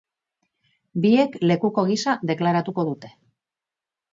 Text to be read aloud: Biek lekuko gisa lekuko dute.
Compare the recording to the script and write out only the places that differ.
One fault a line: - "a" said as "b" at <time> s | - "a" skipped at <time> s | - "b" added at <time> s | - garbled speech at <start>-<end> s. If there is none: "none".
- "lekuko" said as "deklaratuko" at 2.3 s